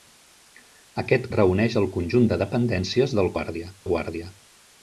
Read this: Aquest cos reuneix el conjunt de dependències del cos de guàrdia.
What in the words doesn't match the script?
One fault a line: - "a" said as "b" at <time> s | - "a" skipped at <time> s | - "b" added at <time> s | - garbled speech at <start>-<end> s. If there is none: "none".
- "cos" skipped at 1.3 s
- "cos" said as "guàrdia" at 3.3 s